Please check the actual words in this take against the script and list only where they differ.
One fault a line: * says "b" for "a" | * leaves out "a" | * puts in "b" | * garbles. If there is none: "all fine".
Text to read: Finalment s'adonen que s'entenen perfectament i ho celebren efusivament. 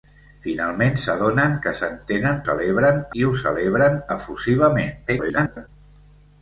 * says "celebren" for "perfectament"
* garbles